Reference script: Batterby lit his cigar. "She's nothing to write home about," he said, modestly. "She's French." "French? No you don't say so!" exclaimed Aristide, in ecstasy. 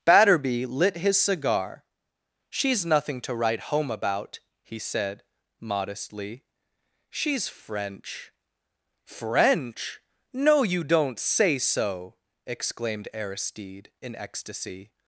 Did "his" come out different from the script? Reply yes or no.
no